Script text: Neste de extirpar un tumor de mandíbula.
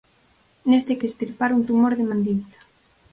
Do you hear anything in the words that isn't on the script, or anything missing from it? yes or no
no